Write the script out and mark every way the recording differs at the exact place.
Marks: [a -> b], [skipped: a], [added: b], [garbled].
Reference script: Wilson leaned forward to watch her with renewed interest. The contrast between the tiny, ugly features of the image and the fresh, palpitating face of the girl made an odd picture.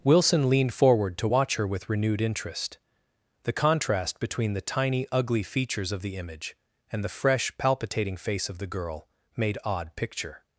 Wilson leaned forward to watch her with renewed interest. The contrast between the tiny, ugly features of the image and the fresh, palpitating face of the girl made [skipped: an] odd picture.